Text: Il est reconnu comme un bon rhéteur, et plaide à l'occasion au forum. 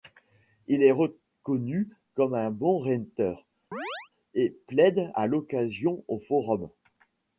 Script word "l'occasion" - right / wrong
right